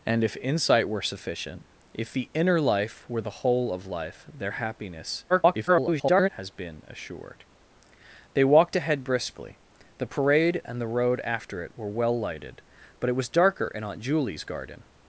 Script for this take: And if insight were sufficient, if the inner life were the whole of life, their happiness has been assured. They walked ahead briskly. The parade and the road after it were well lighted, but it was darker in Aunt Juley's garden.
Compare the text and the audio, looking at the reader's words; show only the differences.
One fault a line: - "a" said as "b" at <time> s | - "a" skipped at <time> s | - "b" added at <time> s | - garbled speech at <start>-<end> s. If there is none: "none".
- garbled speech at 5.3-6.3 s